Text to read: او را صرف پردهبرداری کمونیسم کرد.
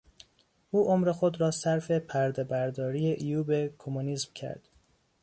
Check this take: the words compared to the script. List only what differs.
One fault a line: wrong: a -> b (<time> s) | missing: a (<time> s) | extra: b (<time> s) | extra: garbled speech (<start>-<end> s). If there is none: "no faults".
extra: عمر خود (0.8 s)
extra: عیوب (3.1 s)